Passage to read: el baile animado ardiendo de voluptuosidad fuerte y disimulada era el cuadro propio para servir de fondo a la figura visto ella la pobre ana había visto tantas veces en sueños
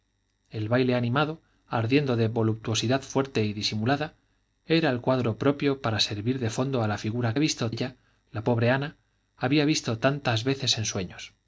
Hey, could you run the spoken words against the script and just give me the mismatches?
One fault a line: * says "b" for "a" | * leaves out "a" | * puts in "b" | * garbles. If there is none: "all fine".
all fine